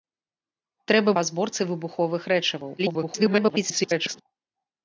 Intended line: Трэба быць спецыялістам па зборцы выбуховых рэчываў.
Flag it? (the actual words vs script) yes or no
yes